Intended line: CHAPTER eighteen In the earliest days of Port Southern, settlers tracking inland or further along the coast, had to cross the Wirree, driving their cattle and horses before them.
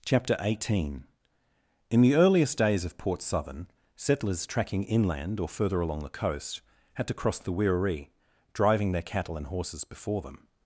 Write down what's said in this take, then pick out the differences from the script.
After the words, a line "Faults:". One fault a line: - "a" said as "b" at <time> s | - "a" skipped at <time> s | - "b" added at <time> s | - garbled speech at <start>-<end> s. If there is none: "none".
CHAPTER eighteen In the earliest days of Port Southern, settlers tracking inland or further along the coast, had to cross the Wirree, driving their cattle and horses before them.
Faults:
none